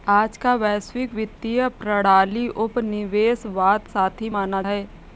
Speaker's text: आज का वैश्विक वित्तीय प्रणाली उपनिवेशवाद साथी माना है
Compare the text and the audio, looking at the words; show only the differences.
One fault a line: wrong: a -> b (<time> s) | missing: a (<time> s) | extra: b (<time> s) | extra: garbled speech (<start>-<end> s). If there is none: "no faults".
no faults